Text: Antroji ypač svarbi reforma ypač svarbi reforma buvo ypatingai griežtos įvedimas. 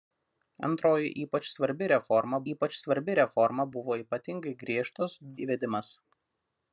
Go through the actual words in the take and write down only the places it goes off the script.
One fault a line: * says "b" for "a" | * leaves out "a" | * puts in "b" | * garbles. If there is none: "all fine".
all fine